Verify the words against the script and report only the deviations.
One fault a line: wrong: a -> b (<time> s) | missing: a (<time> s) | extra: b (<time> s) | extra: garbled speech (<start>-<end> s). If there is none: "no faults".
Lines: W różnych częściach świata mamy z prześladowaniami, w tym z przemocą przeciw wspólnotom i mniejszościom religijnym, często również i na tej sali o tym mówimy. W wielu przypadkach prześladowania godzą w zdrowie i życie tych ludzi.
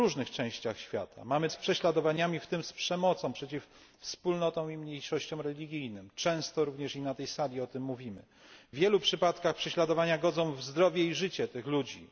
no faults